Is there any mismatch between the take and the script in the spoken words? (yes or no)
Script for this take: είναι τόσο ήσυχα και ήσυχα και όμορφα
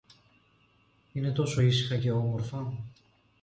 yes